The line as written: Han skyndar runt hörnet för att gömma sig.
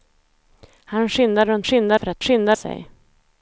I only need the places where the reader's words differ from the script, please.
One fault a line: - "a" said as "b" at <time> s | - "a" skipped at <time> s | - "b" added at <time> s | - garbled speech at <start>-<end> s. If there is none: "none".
- "hörnet" said as "skyndar" at 1.6 s
- "gömma" said as "skyndar" at 2.2 s